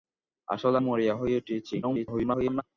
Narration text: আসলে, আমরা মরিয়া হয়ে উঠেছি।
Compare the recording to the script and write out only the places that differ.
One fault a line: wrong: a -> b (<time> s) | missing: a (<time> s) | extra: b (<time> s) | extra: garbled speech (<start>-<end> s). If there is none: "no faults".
missing: আমরা (0.8 s)
extra: garbled speech (1.8-2.6 s)